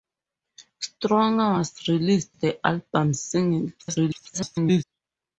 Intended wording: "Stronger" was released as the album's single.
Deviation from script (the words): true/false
true